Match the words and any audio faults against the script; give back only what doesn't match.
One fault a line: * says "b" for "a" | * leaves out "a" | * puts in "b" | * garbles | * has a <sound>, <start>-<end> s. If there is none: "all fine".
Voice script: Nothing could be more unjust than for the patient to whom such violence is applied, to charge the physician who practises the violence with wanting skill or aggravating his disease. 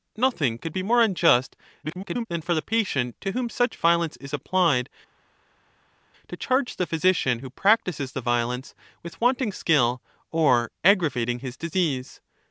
* garbles